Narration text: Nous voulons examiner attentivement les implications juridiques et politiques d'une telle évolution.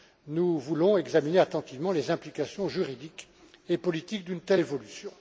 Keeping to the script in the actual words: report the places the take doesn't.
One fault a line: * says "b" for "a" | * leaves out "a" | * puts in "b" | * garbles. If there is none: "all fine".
all fine